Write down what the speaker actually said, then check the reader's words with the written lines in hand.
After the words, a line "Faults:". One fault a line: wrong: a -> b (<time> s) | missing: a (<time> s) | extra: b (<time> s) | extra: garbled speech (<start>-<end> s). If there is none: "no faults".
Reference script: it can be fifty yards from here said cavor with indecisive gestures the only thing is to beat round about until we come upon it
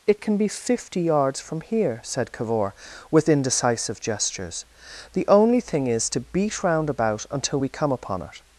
it can be fifty yards from here said cavor with indecisive gestures the only thing is to beat round about until we come upon it
Faults:
no faults